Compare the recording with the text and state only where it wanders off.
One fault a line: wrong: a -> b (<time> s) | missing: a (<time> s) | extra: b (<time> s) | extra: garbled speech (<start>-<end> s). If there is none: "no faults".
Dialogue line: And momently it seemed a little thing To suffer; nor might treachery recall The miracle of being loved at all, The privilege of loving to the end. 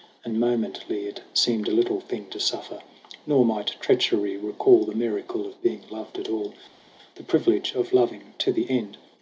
no faults